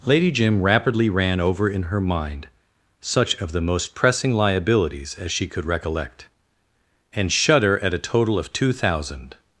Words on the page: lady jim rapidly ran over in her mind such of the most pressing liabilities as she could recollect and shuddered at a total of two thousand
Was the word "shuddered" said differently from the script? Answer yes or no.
yes